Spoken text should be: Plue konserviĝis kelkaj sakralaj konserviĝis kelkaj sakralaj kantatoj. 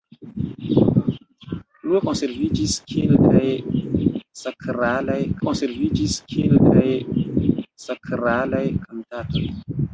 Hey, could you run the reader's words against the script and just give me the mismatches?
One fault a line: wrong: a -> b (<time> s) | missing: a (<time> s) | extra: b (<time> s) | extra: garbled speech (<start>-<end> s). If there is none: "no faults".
no faults